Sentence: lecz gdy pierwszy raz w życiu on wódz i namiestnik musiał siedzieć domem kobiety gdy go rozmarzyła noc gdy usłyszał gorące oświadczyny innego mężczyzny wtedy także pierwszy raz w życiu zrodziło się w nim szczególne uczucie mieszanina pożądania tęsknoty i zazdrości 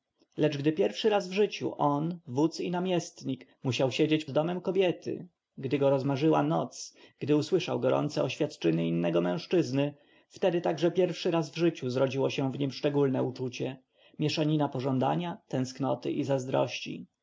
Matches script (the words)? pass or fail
pass